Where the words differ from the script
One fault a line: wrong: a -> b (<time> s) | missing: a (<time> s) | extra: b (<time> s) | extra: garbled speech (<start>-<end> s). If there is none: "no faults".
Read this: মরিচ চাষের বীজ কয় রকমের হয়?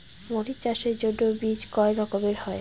extra: জন্য (1.0 s)